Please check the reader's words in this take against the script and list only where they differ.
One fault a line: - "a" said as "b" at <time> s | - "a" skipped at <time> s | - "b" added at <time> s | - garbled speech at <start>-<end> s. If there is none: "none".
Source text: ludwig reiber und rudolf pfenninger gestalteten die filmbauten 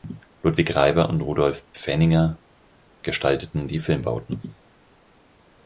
none